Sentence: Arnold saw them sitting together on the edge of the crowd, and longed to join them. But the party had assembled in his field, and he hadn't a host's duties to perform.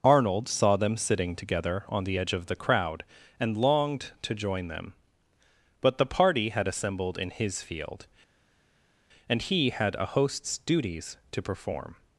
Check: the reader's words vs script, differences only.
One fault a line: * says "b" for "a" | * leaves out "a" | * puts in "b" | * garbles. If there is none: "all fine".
* says "had" for "hadn't"